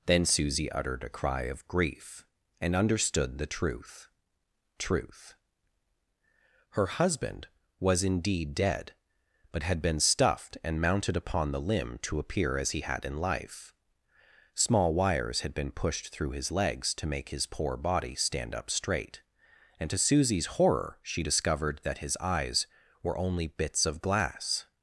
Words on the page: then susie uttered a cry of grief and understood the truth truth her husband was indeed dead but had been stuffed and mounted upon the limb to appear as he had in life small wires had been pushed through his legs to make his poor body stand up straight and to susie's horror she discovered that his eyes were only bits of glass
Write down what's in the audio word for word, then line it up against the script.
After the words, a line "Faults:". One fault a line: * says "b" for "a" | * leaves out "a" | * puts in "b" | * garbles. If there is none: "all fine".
then susie uttered a cry of grief and understood the truth truth her husband was indeed dead but had been stuffed and mounted upon the limb to appear as he had in life small wires had been pushed through his legs to make his poor body stand up straight and to susie's horror she discovered that his eyes were only bits of glass
Faults:
all fine